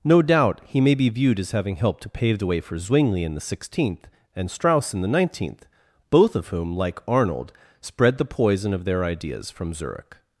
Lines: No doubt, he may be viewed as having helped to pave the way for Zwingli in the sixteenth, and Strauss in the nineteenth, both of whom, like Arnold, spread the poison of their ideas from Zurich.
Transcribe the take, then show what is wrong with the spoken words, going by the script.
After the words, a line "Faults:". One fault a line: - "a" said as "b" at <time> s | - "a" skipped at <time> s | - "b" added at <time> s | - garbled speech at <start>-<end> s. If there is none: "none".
No doubt, he may be viewed as having helped to pave the way for Zwingli in the sixteenth, and Strauss in the nineteenth, both of whom, like Arnold, spread the poison of their ideas from Zurich.
Faults:
none